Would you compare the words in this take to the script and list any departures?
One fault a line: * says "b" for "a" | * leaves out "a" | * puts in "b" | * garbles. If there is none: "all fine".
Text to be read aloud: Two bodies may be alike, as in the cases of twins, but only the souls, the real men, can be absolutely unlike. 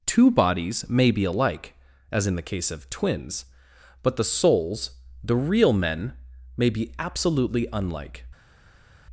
* says "case" for "cases"
* leaves out "only"
* says "may" for "can"